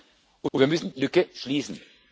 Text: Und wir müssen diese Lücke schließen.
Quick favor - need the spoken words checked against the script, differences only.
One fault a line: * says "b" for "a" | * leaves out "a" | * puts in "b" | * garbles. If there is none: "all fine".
* puts in "und"
* leaves out "diese"